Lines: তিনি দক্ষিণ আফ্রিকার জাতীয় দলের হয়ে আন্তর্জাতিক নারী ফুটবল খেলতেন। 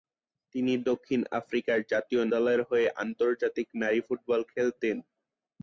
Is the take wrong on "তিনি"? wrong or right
right